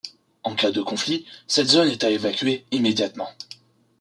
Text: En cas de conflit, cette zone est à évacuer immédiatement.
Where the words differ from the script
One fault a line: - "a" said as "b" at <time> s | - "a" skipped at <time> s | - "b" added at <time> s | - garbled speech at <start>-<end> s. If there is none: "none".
none